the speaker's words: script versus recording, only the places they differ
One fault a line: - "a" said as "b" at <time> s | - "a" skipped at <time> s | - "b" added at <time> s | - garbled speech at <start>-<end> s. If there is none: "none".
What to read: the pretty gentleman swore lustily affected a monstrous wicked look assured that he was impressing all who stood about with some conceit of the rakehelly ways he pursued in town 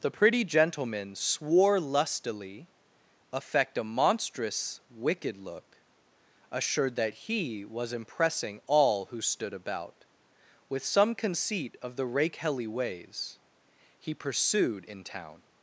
- "affected" said as "affect" at 3.3 s